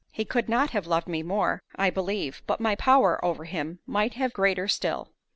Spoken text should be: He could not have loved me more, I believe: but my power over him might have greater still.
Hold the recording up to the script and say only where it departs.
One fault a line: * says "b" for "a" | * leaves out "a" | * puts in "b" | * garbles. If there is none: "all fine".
all fine